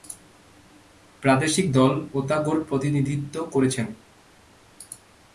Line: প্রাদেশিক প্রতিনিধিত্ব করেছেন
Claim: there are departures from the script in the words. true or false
true